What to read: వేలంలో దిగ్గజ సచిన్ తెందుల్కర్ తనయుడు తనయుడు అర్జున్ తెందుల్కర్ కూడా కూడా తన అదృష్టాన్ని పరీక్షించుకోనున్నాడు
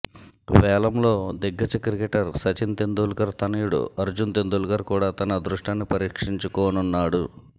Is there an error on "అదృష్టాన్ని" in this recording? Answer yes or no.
no